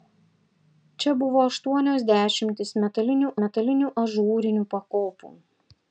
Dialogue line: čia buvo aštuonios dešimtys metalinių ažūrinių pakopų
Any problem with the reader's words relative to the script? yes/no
yes